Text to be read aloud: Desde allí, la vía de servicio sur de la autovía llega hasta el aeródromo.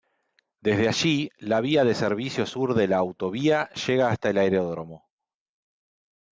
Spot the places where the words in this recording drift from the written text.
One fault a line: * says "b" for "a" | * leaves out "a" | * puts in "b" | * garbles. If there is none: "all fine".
all fine